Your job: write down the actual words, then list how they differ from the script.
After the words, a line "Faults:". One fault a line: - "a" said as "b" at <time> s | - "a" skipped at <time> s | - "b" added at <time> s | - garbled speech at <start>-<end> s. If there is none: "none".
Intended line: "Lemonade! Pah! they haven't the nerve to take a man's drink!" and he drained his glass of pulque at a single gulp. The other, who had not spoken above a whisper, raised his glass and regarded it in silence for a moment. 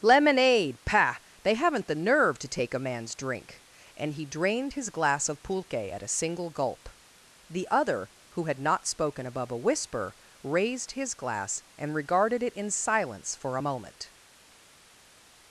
"Lemonade! Pah! they haven't the nerve to take a man's drink!" and he drained his glass of pulque at a single gulp. The other, who had not spoken above a whisper, raised his glass and regarded it in silence for a moment.
Faults:
none